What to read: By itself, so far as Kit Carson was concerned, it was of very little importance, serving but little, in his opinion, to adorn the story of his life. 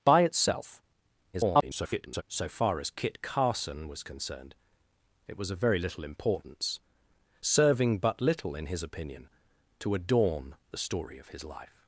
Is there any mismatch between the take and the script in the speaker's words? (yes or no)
yes